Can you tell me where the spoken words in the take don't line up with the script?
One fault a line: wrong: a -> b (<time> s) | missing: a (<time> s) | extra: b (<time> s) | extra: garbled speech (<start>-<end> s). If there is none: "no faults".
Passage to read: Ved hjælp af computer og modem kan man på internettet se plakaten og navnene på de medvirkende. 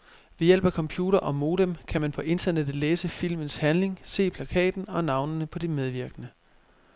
extra: læse filmens handling (2.8 s)